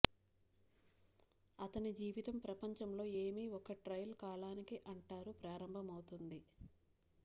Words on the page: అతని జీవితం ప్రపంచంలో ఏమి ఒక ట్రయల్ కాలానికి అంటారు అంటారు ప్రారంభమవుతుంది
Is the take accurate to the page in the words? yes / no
no